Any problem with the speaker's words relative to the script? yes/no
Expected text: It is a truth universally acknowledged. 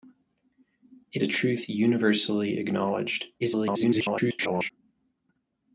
yes